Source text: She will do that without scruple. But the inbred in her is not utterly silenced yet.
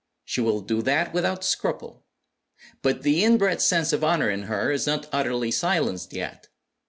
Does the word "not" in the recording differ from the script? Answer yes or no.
no